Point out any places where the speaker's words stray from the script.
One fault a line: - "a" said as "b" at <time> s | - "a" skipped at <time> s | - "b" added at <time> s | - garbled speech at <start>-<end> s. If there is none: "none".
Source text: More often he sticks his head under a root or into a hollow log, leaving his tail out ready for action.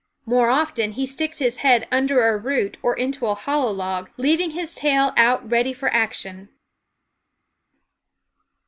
none